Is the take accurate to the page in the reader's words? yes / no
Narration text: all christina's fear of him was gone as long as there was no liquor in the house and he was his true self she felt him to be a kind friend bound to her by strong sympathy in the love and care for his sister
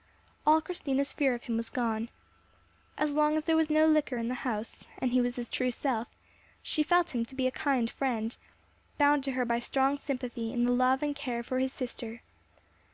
yes